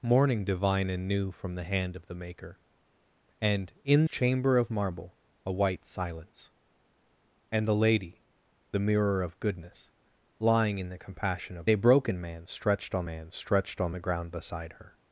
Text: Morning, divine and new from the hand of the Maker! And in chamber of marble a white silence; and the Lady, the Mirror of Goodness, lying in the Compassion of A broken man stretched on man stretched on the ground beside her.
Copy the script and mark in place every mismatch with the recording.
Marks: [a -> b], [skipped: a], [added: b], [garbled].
Morning, divine and new from the hand of the Maker! And in chamber of marble a white silence; and the Lady, the Mirror of Goodness, lying in the Compassion of A broken man stretched on man stretched on the ground beside her.